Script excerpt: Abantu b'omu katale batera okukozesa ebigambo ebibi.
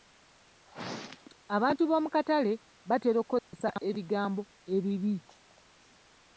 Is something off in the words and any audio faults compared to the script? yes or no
yes